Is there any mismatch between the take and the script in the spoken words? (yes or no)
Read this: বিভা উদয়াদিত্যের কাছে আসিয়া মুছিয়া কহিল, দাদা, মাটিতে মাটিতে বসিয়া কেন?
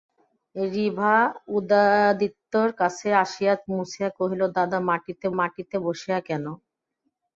no